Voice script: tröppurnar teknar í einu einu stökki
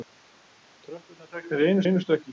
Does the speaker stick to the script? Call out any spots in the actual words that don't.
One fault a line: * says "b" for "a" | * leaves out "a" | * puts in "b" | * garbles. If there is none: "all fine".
all fine